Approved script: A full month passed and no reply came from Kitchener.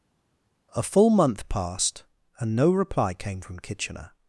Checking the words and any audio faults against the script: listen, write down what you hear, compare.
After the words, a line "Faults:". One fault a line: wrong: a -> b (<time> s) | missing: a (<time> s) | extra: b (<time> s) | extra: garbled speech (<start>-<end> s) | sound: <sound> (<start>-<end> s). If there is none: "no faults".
A full month passed and no reply came from Kitchener.
Faults:
no faults